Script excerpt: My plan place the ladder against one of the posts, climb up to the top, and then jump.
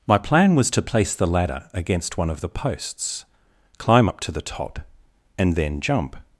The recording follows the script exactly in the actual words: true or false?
false